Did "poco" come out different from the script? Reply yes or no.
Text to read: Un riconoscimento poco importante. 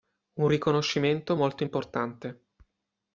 yes